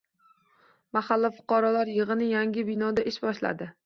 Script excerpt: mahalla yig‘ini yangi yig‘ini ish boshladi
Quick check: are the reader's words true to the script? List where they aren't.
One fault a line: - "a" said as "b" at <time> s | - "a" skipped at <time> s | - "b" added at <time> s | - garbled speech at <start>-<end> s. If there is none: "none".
- "fuqarolar" added at 1.4 s
- "yig‘ini" said as "binoda" at 2.7 s